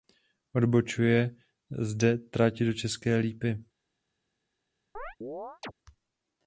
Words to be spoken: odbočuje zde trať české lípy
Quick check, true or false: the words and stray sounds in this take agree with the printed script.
false